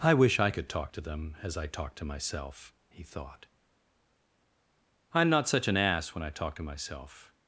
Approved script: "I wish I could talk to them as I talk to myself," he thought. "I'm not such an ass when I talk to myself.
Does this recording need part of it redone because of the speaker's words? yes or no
no